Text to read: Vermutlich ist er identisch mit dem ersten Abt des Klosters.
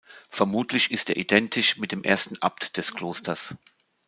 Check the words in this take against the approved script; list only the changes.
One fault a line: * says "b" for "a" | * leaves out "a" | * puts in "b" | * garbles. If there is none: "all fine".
all fine